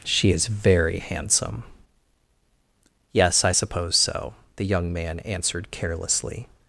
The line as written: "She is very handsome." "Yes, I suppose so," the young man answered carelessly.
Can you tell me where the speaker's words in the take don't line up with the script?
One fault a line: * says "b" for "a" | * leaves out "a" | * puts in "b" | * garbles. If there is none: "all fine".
all fine